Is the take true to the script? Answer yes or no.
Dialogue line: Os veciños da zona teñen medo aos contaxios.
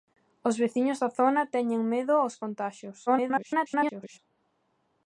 no